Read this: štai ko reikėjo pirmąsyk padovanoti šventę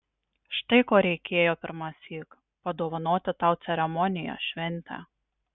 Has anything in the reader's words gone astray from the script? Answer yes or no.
yes